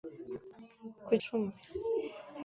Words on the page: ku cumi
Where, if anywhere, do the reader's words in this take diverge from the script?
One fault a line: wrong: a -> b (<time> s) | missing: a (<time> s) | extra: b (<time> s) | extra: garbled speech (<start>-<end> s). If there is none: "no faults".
no faults